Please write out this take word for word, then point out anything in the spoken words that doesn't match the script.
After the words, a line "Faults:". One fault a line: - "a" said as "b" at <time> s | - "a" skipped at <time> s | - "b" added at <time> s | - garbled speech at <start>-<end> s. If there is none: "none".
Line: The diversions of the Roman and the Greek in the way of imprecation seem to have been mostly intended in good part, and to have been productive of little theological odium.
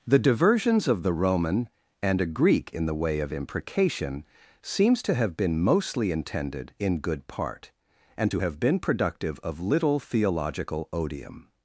The diversions of the Roman and a Greek in the way of imprecation seems to have been mostly intended in good part, and to have been productive of little theological odium.
Faults:
- "the" said as "a" at 2.2 s
- "seem" said as "seems" at 4.6 s